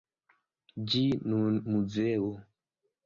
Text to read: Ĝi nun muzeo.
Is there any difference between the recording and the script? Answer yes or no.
no